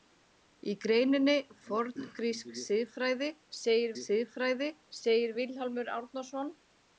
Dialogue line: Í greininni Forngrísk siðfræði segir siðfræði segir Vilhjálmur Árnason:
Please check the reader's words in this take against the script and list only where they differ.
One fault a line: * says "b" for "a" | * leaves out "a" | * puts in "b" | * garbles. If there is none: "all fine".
all fine